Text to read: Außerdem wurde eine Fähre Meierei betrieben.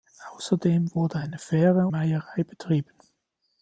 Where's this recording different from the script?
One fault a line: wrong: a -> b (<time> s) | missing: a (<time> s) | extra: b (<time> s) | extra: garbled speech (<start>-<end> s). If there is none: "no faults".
no faults